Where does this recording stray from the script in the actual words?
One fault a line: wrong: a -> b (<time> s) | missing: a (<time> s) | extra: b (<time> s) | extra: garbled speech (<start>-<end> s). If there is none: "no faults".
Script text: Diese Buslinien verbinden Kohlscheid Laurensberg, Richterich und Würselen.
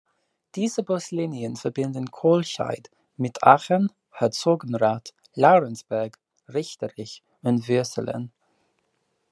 extra: mit Aachen Herzogenrath (3.2 s)